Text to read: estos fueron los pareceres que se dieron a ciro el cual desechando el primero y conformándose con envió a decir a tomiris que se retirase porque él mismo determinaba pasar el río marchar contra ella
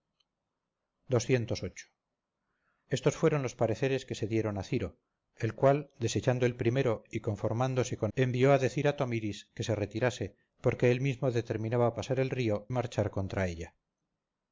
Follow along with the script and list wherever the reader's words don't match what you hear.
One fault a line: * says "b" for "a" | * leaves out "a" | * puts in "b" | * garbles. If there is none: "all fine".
all fine